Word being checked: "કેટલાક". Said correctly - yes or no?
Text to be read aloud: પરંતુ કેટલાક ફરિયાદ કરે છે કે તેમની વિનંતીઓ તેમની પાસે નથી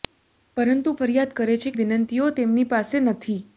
no